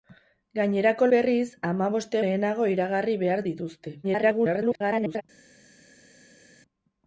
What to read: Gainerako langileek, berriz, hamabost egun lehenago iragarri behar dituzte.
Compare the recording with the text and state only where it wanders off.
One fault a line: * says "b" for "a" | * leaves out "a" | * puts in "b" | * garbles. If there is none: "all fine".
* leaves out "langileek"
* leaves out "egun"
* garbles